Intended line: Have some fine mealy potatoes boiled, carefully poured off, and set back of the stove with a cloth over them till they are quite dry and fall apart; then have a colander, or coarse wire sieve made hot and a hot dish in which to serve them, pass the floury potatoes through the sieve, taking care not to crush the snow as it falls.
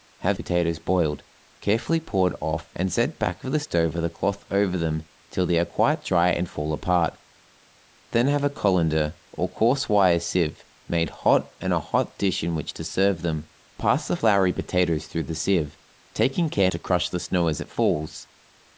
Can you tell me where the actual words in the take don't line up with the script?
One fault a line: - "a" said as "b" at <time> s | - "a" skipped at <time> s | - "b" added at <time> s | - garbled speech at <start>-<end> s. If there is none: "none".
- "some fine mealy" skipped at 0.4 s
- "not" skipped at 16.7 s